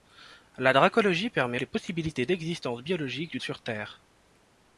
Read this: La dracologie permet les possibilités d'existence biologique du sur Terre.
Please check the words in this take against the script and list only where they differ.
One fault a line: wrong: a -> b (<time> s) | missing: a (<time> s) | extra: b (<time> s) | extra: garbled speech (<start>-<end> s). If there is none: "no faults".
no faults